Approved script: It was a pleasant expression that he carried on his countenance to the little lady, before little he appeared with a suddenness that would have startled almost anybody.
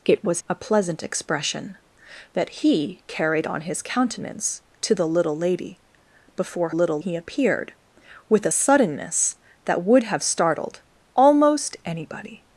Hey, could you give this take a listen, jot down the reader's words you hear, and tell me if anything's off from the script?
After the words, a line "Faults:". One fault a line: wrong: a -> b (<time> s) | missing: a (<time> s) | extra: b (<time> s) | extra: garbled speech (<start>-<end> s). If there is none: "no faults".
It was a pleasant expression that he carried on his countenance to the little lady, before little he appeared with a suddenness that would have startled almost anybody.
Faults:
no faults